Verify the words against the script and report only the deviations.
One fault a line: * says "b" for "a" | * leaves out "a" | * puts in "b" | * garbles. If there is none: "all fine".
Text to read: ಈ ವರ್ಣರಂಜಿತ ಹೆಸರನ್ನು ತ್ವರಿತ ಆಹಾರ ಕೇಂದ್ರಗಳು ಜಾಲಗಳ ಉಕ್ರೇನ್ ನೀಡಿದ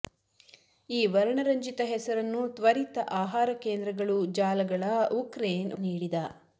all fine